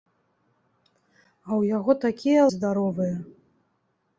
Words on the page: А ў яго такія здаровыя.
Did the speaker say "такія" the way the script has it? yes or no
yes